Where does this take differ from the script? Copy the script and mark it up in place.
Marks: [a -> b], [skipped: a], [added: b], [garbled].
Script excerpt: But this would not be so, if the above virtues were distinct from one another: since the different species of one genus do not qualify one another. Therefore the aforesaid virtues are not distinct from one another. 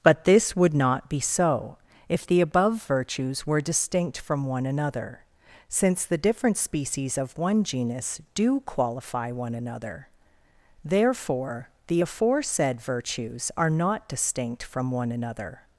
But this would not be so, if the above virtues were distinct from one another: since the different species of one genus do [skipped: not] qualify one another. Therefore the aforesaid virtues are not distinct from one another.